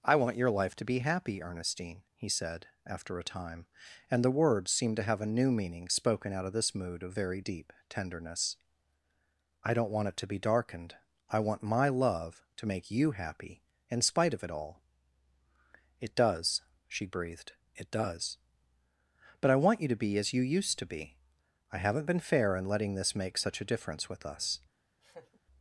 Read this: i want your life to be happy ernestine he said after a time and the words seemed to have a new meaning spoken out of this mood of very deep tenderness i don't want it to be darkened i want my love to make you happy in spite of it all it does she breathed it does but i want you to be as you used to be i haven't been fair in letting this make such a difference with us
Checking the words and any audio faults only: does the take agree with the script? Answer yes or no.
no